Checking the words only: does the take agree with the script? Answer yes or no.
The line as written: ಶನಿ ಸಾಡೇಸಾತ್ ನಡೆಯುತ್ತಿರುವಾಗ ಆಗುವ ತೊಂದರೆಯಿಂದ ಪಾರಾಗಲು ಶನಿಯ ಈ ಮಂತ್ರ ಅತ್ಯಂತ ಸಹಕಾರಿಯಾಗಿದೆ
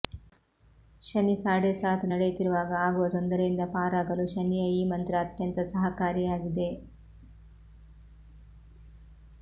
yes